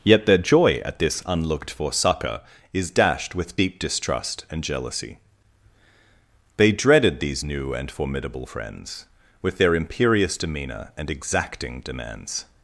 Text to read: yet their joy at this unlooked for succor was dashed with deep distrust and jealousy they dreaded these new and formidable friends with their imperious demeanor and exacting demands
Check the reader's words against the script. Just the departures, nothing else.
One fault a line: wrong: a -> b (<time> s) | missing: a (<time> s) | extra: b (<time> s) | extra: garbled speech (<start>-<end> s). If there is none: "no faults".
wrong: was -> is (2.7 s)